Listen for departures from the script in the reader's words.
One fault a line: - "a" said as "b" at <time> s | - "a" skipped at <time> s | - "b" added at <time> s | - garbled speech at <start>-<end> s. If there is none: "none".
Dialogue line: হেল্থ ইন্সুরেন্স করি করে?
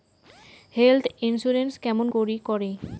- "কেমন" added at 1.8 s